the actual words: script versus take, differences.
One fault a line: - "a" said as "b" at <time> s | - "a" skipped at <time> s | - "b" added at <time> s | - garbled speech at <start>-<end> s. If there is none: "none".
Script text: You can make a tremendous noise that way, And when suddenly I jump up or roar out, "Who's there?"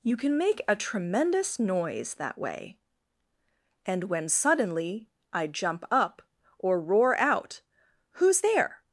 none